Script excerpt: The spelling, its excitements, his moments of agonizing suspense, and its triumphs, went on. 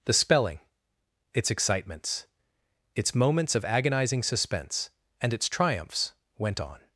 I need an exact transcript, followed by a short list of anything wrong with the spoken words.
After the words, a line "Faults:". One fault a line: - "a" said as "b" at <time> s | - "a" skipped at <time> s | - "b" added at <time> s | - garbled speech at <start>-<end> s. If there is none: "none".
The spelling, its excitements, its moments of agonizing suspense, and its triumphs, went on.
Faults:
- "his" said as "its" at 3.0 s